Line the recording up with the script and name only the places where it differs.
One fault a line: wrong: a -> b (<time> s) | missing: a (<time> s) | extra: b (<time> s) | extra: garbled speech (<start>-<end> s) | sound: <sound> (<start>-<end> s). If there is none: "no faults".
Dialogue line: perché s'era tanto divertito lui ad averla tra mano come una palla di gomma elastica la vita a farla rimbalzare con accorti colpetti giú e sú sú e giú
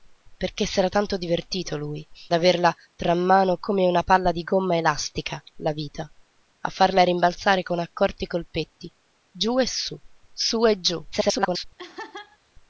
missing: ad (2.0 s)
extra: garbled speech (11.1-11.6 s)
sound: laugh (11.8-12.4 s)